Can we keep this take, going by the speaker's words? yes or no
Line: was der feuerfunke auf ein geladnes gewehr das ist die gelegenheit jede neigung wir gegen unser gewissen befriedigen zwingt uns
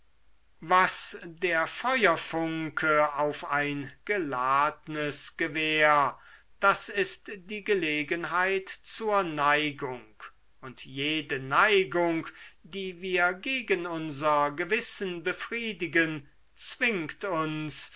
no